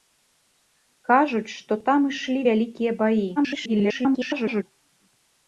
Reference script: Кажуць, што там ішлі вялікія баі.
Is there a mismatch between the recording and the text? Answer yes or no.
yes